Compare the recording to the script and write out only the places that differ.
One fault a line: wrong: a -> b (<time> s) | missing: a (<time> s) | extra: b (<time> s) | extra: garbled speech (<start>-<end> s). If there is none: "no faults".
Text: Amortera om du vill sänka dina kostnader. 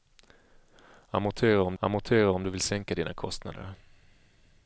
extra: amortera om (1.8 s)